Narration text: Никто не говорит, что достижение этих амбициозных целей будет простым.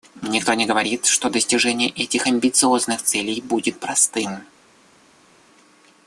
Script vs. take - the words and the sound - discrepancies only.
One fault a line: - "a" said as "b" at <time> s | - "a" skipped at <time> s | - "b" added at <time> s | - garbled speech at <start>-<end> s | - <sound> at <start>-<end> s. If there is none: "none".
none